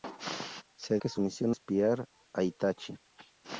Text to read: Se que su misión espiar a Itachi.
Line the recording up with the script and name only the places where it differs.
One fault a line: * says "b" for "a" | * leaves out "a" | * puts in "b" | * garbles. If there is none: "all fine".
all fine